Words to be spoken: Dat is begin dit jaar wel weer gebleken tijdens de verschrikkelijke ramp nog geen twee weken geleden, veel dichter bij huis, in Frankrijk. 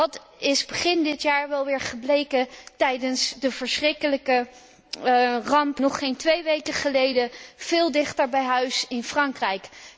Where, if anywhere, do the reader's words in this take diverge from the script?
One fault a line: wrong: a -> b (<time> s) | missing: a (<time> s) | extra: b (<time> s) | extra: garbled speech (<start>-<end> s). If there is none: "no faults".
no faults